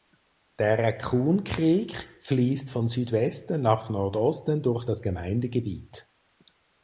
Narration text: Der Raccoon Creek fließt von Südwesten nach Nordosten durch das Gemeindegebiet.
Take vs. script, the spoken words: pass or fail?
pass